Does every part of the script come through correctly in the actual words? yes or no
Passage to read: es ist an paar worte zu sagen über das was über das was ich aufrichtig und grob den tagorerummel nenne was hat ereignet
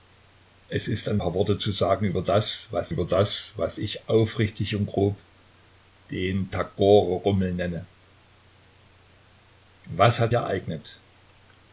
yes